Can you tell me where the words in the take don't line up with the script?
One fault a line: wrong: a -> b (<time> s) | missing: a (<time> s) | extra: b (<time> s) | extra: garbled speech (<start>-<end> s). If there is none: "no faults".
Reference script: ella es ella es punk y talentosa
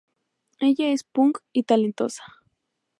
missing: ella es (1.0 s)